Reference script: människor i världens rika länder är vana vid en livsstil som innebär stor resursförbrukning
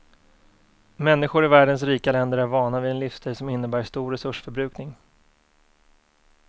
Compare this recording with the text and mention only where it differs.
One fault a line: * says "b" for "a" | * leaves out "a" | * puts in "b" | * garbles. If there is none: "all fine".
all fine